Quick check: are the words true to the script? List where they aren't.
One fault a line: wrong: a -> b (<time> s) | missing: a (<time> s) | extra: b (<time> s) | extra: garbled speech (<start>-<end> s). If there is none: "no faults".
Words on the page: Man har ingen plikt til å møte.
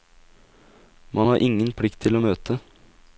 no faults